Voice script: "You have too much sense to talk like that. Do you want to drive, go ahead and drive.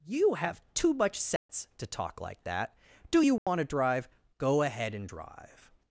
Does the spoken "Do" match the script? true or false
true